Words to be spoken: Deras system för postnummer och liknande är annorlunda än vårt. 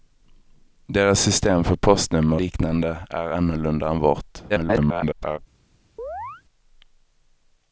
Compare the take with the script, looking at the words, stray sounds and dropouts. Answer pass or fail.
fail